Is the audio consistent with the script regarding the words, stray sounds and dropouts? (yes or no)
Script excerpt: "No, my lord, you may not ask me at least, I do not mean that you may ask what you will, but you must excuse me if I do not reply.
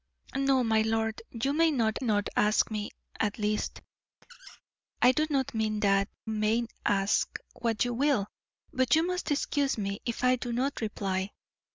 no